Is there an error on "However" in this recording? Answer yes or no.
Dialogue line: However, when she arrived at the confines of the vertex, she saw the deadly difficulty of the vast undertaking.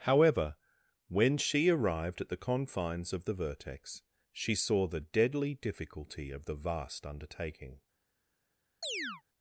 no